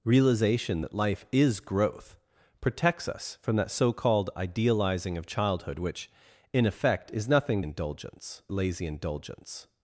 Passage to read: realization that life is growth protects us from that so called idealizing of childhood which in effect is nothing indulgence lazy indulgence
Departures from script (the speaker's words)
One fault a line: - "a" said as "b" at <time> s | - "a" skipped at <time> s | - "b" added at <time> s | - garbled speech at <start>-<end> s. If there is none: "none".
none